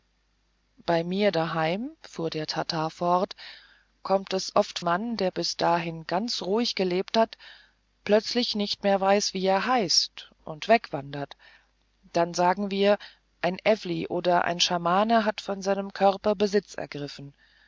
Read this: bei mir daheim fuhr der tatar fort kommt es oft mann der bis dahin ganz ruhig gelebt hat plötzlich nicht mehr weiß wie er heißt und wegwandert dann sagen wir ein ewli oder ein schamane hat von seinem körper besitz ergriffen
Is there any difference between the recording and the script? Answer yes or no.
no